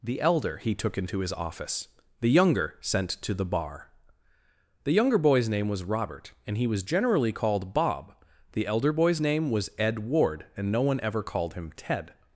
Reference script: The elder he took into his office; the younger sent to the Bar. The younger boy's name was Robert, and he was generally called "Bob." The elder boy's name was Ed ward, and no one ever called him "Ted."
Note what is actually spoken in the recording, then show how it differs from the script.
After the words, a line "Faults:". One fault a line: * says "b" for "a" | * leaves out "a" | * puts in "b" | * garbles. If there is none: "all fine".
The elder he took into his office; the younger sent to the Bar. The younger boy's name was Robert, and he was generally called "Bob." The elder boy's name was Ed ward, and no one ever called him "Ted."
Faults:
all fine